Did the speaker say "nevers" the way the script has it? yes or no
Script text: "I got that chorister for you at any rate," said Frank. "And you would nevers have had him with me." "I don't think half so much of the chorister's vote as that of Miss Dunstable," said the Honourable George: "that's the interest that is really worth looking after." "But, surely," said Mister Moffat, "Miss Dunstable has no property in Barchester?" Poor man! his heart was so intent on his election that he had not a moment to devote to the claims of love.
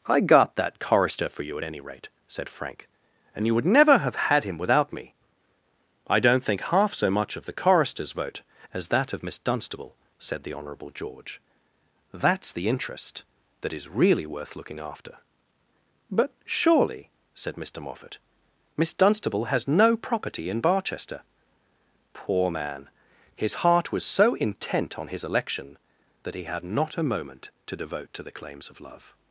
no